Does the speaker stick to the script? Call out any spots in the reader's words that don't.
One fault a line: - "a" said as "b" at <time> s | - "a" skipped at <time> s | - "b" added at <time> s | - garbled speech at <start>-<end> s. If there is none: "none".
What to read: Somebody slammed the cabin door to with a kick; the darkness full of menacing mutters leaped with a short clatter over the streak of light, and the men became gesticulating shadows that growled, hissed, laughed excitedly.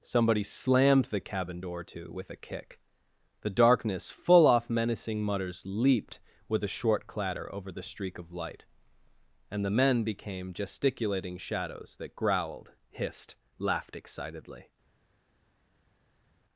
- "of" said as "off" at 4.5 s